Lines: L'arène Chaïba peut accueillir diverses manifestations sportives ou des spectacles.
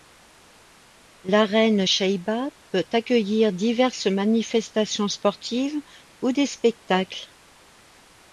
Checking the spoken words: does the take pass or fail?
pass